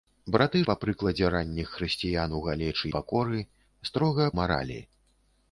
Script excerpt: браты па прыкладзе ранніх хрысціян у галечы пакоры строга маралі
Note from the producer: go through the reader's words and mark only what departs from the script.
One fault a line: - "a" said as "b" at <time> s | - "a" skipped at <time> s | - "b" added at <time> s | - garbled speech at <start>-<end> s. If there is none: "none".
none